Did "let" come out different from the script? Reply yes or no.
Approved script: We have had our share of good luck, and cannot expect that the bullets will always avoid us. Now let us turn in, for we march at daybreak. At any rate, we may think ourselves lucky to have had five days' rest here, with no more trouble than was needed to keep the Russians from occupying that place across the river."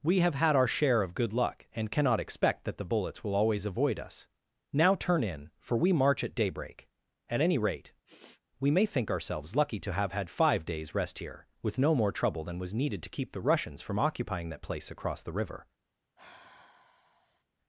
yes